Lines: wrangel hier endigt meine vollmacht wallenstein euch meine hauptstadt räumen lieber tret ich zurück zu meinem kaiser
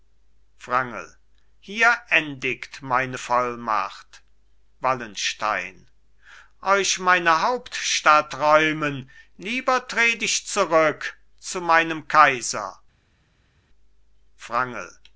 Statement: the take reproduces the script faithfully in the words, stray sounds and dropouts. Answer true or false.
true